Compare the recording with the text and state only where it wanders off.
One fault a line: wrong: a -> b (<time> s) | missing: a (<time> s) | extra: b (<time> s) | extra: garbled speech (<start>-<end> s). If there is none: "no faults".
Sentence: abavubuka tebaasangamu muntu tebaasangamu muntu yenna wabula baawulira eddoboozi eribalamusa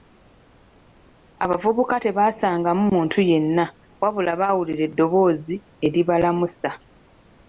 missing: tebaasangamu muntu (3.2 s)